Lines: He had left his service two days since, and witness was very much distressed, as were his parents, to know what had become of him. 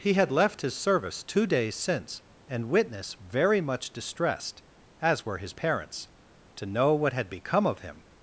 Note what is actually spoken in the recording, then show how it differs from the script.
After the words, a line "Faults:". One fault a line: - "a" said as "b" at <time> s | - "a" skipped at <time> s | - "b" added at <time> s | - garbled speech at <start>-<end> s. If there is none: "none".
He had left his service two days since, and witness very much distressed, as were his parents, to know what had become of him.
Faults:
- "was" skipped at 3.1 s